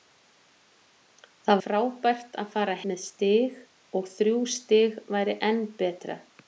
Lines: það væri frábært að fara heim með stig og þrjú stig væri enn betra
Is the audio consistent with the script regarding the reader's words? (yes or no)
no